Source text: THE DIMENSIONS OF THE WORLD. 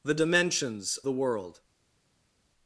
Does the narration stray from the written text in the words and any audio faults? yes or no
yes